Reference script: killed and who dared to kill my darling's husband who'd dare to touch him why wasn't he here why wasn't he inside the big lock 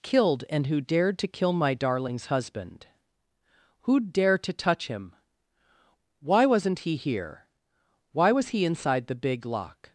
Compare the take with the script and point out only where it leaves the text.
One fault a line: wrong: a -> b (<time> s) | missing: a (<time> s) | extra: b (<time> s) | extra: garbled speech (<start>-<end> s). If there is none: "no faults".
wrong: wasn't -> was (8.3 s)